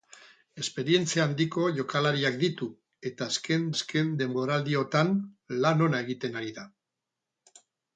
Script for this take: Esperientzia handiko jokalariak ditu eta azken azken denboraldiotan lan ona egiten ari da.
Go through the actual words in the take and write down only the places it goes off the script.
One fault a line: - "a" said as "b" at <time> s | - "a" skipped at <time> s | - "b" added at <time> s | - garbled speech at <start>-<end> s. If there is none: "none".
none